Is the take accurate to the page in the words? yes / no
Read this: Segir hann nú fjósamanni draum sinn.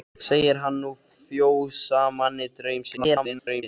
no